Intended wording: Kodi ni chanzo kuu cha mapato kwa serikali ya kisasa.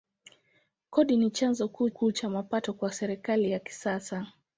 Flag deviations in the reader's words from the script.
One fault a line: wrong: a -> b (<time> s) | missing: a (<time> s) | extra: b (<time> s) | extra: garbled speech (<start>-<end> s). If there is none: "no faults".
extra: kuu (1.9 s)